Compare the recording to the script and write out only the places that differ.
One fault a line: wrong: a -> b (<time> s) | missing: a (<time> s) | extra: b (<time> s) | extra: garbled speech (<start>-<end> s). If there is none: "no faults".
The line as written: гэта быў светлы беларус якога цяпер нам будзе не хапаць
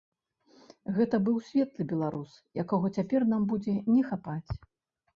no faults